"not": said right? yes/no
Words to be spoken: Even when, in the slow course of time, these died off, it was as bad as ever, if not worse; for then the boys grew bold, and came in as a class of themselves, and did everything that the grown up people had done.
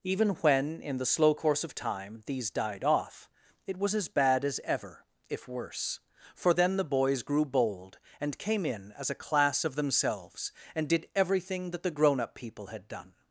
no